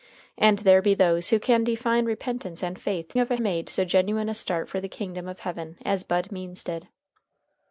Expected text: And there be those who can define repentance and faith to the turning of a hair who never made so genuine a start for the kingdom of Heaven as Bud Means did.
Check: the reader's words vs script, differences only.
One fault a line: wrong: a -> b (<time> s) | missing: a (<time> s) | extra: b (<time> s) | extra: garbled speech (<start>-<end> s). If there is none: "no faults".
missing: to the turning (3.1 s)
missing: hair who never (3.4 s)